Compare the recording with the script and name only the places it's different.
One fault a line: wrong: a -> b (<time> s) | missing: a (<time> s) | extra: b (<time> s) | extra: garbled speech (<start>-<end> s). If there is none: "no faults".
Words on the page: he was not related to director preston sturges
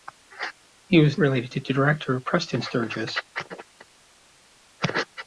missing: not (1.2 s)